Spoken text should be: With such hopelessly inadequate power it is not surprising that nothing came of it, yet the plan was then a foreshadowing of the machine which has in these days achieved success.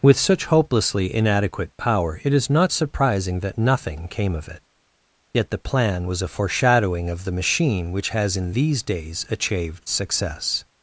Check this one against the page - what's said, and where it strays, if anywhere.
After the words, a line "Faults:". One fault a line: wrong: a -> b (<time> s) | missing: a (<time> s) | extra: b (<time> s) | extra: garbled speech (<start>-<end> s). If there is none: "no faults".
With such hopelessly inadequate power it is not surprising that nothing came of it, yet the plan was a foreshadowing of the machine which has in these days achieved success.
Faults:
missing: then (6.2 s)